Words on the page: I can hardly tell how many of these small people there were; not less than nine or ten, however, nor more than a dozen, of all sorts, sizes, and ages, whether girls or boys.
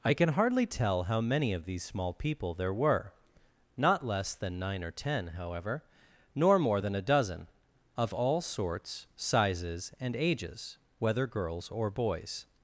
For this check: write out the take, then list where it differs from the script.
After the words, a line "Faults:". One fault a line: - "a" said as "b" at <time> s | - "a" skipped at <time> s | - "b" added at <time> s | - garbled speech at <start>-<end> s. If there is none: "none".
I can hardly tell how many of these small people there were; not less than nine or ten, however, nor more than a dozen, of all sorts, sizes, and ages, whether girls or boys.
Faults:
none